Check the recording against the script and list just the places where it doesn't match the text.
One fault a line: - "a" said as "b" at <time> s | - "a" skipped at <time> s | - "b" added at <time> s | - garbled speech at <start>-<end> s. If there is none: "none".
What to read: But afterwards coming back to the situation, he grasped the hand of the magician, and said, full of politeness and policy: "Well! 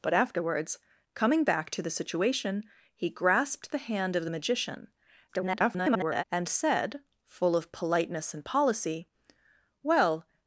- garbled speech at 5.3-6.2 s